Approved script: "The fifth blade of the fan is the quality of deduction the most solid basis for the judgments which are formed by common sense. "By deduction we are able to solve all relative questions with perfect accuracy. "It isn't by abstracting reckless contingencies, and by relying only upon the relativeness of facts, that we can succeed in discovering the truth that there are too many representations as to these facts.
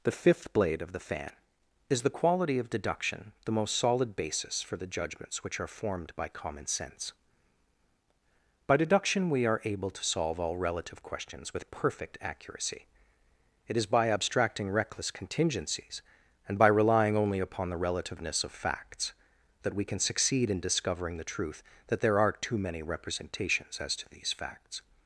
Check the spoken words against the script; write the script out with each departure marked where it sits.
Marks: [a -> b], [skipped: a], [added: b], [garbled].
"The fifth blade of the fan is the quality of deduction the most solid basis for the judgments which are formed by common sense. "By deduction we are able to solve all relative questions with perfect accuracy. "It [isn't -> is] by abstracting reckless contingencies, and by relying only upon the relativeness of facts, that we can succeed in discovering the truth that there are too many representations as to these facts.